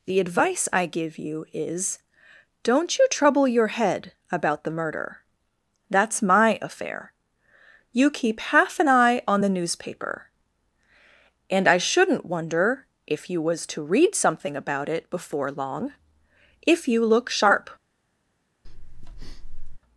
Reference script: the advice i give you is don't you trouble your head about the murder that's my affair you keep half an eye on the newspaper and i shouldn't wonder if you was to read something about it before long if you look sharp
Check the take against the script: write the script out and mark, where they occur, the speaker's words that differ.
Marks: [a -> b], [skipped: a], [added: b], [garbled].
the advice i give you is don't you trouble your head about the murder that's my affair you keep half an eye on the newspaper and i shouldn't wonder if you was to read something about it before long if you look sharp